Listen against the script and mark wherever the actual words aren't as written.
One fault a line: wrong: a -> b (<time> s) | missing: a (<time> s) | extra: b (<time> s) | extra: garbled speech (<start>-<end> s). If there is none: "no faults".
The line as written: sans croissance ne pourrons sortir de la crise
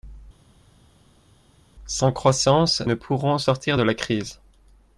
no faults